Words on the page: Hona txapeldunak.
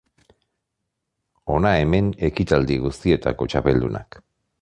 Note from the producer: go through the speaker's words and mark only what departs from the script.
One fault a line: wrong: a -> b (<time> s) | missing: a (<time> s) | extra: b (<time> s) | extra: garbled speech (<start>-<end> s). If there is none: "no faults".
extra: hemen ekitaldi guztietako (1.8 s)